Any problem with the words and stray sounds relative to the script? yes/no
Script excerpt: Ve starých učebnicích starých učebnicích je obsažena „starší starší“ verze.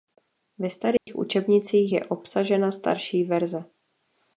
yes